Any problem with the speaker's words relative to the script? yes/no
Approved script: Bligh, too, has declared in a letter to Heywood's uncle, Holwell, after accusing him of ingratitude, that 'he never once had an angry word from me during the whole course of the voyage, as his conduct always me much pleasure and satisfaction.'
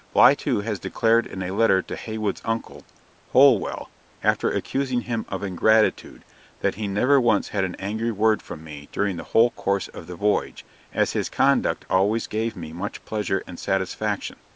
yes